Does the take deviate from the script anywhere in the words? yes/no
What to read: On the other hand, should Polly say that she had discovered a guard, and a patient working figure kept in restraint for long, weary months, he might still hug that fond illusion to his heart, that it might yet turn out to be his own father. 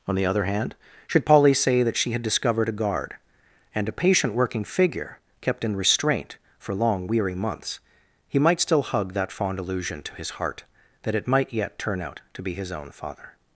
no